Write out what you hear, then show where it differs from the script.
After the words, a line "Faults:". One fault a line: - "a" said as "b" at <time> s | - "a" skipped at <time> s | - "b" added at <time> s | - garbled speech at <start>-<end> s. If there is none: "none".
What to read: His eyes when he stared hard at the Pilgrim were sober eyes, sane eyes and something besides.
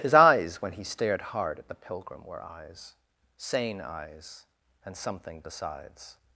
His eyes when he stared hard at the Pilgrim were eyes, sane eyes and something besides.
Faults:
- "sober" skipped at 2.4 s